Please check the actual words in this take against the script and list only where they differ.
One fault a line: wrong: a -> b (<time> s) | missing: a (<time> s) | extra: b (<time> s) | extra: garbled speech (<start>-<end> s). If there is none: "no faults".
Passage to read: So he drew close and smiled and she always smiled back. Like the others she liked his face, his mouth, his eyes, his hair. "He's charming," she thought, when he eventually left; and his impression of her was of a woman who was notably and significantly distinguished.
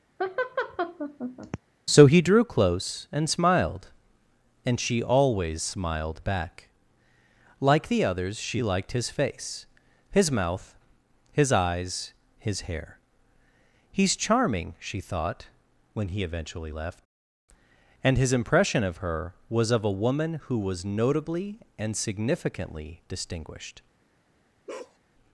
no faults